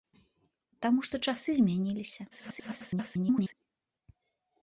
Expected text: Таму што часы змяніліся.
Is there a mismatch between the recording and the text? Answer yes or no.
yes